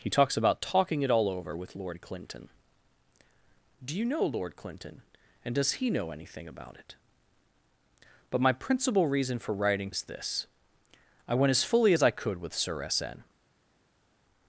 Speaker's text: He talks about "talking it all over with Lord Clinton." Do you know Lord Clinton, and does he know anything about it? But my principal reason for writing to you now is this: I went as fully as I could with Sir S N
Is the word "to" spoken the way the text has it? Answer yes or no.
no